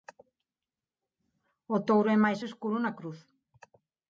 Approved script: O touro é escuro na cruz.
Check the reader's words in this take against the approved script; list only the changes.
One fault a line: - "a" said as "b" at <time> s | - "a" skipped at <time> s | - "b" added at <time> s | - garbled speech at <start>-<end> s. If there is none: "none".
- "máis" added at 2.2 s